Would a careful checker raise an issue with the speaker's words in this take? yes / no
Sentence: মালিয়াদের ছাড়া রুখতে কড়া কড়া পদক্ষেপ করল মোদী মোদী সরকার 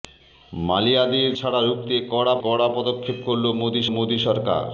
no